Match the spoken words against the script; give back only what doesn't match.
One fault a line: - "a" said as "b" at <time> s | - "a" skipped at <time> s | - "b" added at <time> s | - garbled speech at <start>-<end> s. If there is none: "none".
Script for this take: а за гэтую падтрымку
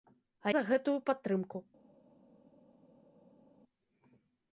none